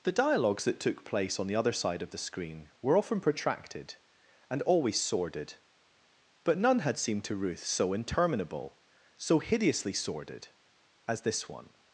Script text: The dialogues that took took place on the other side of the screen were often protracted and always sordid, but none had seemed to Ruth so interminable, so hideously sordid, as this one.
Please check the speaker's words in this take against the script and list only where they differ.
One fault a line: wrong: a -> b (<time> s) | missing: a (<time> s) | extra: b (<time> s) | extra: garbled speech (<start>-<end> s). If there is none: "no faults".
missing: took (1.1 s)